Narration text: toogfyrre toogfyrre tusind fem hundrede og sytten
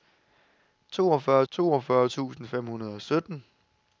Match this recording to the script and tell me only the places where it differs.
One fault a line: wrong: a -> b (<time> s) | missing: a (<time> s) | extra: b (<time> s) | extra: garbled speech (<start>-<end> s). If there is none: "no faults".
no faults